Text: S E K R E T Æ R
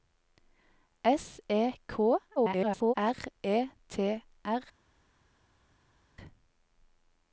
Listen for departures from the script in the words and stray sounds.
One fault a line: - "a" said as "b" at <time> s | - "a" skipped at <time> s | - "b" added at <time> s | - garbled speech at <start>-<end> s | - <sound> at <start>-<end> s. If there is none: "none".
- garbled speech at 2.4-2.9 s
- "Æ" skipped at 4.2 s